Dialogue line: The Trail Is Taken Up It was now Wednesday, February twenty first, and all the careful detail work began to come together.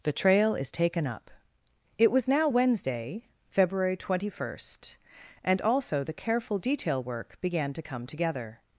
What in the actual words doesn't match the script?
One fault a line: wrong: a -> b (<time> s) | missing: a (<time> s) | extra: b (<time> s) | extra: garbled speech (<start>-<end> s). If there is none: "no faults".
wrong: all -> also (5.6 s)